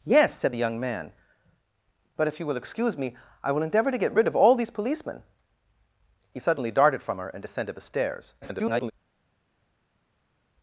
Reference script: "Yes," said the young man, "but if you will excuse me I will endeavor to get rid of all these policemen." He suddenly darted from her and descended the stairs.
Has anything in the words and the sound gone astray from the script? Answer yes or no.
yes